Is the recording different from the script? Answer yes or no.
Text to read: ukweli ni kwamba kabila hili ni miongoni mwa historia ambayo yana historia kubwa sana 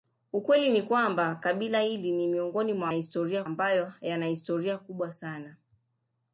no